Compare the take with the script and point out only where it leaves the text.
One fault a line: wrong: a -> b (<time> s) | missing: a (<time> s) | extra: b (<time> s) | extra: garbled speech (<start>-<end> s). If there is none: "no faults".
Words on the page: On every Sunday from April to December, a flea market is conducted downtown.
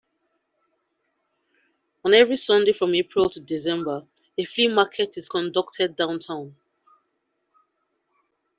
no faults